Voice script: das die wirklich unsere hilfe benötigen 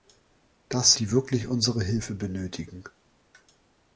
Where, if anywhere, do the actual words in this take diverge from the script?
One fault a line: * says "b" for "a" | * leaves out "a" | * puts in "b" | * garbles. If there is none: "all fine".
all fine